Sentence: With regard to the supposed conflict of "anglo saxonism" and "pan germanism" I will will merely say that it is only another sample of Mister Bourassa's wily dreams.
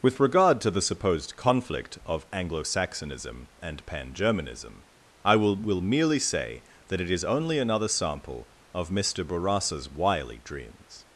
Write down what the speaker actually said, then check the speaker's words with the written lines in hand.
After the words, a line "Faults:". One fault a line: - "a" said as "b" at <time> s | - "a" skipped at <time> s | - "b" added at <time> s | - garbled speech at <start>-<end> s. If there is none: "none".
With regard to the supposed conflict of "anglo saxonism" and "pan germanism" I will will merely say that it is only another sample of Mister Bourassa's wily dreams.
Faults:
none